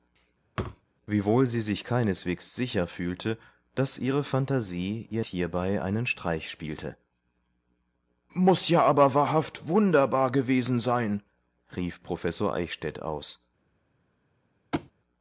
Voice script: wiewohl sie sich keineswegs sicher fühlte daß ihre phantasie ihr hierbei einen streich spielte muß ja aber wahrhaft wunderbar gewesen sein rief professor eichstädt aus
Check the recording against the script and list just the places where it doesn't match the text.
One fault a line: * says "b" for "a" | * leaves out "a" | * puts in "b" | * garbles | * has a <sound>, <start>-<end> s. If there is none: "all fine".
* has a thud, 0.6-0.8 s
* has a thud, 14.7-14.9 s